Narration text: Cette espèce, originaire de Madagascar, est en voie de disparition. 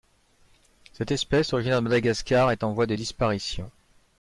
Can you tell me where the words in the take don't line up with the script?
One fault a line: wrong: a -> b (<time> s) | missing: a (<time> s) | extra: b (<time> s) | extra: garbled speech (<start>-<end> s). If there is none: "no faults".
no faults